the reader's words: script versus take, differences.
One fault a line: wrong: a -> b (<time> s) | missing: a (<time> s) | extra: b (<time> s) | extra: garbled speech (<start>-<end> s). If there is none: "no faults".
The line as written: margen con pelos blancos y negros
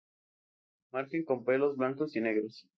no faults